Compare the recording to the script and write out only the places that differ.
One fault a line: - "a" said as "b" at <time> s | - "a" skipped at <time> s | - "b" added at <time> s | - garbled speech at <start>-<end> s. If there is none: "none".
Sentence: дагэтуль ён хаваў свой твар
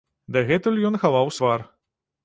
- "свой" skipped at 1.3 s